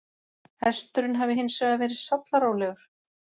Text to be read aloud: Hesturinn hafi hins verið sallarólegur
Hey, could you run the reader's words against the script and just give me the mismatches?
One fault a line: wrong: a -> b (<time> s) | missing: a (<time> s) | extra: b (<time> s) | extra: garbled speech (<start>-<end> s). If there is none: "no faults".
extra: vegar (1.6 s)